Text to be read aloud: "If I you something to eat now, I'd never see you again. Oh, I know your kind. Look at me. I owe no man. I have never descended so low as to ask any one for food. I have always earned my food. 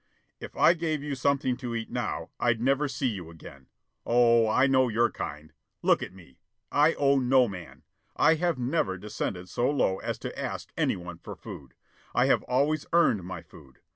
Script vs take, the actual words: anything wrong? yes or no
yes